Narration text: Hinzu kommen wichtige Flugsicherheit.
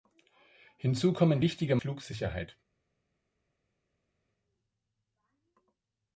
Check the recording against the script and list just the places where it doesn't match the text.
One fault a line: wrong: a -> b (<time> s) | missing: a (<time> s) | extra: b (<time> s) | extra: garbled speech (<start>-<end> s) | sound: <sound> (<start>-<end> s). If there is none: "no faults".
no faults